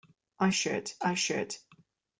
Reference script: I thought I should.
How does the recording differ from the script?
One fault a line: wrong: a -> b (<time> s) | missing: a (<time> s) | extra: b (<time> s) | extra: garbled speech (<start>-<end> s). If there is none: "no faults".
wrong: thought -> should (0.5 s)